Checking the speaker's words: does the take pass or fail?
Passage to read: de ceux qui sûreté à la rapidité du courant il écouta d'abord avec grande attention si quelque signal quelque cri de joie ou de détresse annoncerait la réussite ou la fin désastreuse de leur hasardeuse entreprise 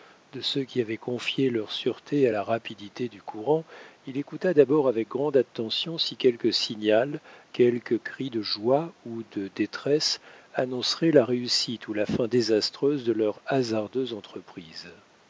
fail